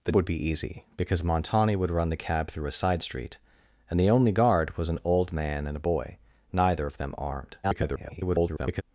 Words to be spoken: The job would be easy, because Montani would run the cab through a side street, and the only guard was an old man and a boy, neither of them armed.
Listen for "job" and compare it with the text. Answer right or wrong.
wrong